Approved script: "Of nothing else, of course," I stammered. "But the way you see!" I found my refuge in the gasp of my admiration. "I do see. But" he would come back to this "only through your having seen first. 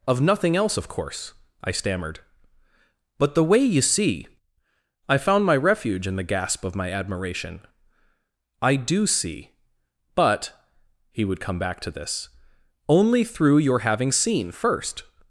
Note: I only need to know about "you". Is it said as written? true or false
true